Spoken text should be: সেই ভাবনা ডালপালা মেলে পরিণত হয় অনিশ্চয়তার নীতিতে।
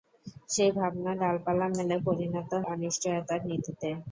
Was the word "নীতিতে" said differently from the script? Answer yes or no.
no